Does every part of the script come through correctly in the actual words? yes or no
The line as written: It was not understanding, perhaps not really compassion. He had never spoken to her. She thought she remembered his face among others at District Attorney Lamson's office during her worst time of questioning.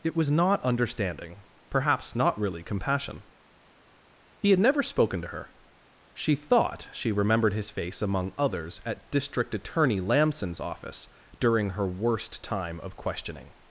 yes